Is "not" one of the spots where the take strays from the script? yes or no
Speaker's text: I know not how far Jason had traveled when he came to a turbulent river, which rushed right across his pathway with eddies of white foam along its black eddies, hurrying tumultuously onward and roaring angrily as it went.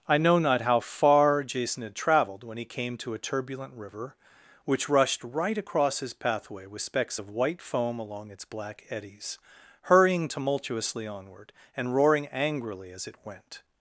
no